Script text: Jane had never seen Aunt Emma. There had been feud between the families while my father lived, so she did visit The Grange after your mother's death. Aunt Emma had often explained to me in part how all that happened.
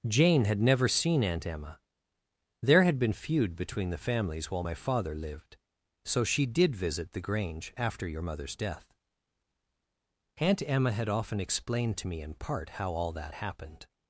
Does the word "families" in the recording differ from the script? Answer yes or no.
no